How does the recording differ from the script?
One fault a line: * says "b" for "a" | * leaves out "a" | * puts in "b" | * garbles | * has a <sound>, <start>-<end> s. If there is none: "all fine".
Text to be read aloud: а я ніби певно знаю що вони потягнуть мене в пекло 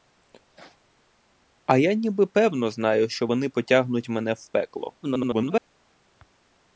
* garbles